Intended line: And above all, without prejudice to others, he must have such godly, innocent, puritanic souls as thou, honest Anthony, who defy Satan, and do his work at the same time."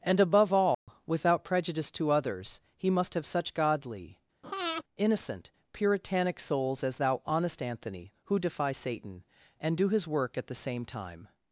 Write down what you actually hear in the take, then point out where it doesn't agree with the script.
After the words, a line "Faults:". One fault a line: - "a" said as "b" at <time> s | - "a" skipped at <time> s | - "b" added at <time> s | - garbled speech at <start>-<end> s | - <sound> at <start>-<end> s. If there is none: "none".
And above all, without prejudice to others, he must have such godly, innocent, puritanic souls as thou, honest Anthony, who defy Satan, and do his work at the same time."
Faults:
- dropout at 0.7-0.9 s
- breath at 4.4-4.8 s